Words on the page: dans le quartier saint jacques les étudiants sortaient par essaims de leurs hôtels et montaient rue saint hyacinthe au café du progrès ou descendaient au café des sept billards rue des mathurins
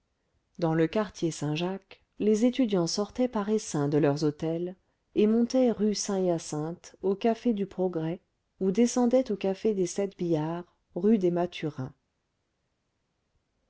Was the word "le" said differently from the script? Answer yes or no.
no